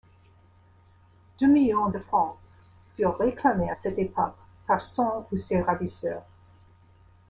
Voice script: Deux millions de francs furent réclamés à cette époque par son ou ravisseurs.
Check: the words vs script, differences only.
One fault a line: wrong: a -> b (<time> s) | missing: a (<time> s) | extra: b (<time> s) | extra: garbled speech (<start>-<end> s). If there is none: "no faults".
extra: ses (5.4 s)